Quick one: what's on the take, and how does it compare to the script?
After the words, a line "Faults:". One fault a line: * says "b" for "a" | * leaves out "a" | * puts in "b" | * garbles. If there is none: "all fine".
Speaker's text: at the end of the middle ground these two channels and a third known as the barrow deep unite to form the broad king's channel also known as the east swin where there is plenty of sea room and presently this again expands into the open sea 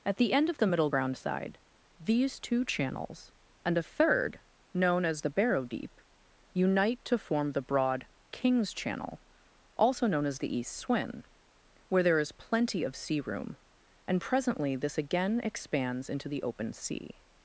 at the end of the middle ground side these two channels and a third known as the barrow deep unite to form the broad king's channel also known as the east swin where there is plenty of sea room and presently this again expands into the open sea
Faults:
* puts in "side"